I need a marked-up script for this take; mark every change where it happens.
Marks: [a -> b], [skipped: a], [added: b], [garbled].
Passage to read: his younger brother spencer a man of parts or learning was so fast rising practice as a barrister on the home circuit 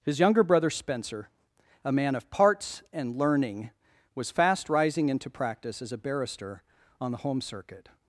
his younger brother spencer a man of parts [or -> and] learning was [skipped: so] fast rising [added: into] practice as a barrister on the home circuit